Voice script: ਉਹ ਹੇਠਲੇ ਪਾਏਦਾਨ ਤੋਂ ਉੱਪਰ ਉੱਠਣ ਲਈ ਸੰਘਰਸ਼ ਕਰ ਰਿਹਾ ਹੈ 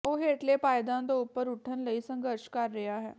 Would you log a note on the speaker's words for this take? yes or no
no